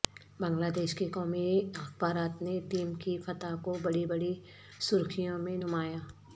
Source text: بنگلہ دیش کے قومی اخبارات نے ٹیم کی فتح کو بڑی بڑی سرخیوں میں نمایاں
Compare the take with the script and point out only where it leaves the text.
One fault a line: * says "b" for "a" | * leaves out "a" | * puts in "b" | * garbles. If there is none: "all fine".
all fine